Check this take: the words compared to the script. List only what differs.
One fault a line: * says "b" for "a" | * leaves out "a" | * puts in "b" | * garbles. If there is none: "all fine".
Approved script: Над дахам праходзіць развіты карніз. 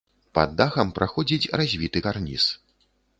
* says "Пад" for "Над"